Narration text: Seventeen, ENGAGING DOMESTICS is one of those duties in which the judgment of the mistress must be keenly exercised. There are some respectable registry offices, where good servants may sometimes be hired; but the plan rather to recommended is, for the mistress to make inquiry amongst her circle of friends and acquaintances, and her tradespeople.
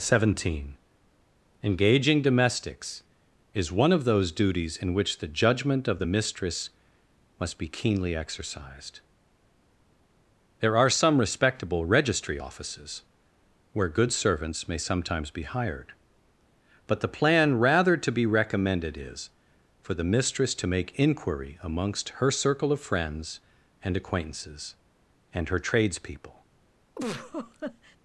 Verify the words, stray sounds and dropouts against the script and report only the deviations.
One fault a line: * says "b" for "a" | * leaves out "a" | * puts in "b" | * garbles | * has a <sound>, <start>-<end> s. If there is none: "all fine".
* puts in "be"
* has a laugh, 27.0-28.0 s